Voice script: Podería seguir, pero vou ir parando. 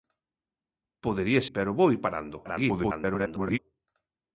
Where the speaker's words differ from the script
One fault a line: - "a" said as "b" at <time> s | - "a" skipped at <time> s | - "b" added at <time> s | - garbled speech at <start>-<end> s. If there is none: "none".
- "seguir" skipped at 1.4 s
- garbled speech at 2.4-3.6 s